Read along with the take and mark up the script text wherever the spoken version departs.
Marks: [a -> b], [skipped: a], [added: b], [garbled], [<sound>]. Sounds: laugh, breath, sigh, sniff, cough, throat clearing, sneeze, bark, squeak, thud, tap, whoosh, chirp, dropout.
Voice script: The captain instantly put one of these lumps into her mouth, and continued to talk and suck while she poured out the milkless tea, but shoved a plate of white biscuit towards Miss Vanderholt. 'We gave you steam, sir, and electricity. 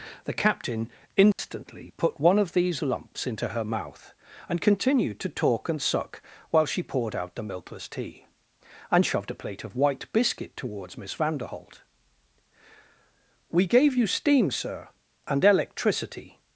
The captain instantly [dropout] put one of these lumps into her mouth, and continued to talk and suck while she poured out the milkless tea, [but -> and] shoved a plate of white biscuit towards Miss Vanderholt. 'We gave you steam, sir, and electricity.